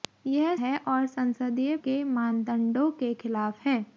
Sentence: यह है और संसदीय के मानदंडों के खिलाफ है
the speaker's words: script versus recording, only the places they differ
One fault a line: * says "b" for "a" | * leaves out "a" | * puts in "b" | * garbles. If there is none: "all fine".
all fine